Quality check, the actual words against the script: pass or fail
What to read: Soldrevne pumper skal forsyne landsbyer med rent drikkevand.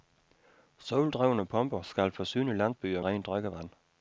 fail